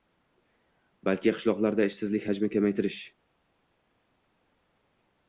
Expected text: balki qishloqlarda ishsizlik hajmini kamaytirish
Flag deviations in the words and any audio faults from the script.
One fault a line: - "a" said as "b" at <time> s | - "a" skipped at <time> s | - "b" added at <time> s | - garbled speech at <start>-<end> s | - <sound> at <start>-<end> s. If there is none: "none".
none